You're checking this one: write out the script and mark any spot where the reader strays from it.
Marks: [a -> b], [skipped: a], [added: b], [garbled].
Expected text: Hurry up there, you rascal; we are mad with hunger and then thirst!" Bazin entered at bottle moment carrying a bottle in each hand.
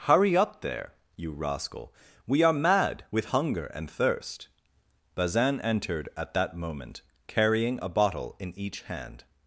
Hurry up there, you rascal; we are mad with hunger and [skipped: then] thirst!" Bazin entered at [bottle -> that] moment carrying a bottle in each hand.